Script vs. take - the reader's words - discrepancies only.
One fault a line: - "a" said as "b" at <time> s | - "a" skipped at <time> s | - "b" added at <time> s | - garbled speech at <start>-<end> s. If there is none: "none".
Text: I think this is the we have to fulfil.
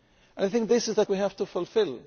none